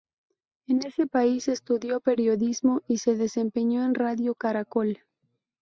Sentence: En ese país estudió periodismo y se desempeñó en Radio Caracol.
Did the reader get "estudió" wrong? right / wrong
right